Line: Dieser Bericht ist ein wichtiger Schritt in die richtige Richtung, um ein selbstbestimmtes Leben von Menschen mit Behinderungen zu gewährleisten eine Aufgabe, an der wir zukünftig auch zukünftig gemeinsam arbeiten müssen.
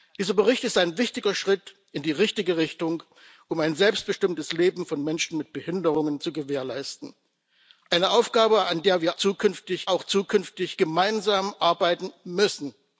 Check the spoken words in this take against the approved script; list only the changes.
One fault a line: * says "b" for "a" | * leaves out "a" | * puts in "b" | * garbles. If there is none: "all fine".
all fine